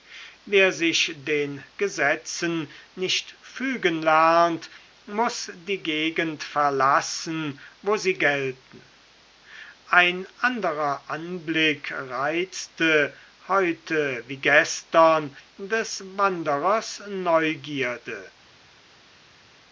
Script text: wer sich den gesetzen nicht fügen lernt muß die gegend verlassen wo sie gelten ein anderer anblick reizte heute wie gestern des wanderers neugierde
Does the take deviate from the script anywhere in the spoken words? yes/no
no